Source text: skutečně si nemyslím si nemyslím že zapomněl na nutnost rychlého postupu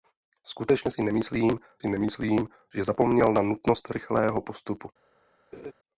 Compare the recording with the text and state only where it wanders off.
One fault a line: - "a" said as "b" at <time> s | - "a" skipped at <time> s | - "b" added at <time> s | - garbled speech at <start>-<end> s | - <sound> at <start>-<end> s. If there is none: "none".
- laugh at 5.5-5.7 s